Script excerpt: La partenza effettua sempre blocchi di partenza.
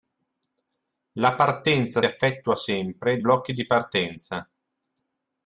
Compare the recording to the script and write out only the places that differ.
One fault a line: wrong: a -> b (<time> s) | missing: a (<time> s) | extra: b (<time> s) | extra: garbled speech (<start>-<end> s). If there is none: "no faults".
no faults